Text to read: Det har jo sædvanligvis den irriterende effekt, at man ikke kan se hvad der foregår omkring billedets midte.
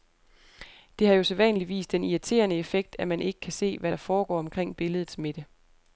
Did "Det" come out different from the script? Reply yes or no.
no